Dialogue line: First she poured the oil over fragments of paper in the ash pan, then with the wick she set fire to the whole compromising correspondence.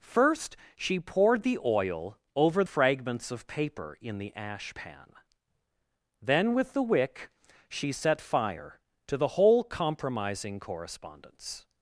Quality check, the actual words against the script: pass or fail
pass